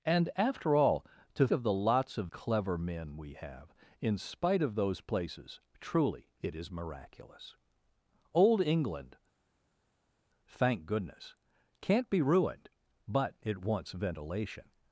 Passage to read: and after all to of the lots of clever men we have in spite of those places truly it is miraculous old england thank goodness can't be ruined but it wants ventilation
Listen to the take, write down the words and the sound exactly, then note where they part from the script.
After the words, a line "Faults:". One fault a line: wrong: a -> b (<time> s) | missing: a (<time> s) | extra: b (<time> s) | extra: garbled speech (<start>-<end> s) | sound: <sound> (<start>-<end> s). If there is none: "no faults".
and after all to of the lots of clever men we have in spite of those places truly it is miraculous old england thank goodness can't be ruined but it wants ventilation
Faults:
no faults